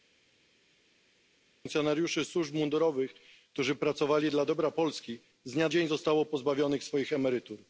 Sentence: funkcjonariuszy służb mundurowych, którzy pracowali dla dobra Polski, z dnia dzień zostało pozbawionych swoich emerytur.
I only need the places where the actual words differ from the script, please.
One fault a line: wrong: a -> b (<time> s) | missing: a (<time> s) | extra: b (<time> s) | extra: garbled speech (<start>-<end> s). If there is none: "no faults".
no faults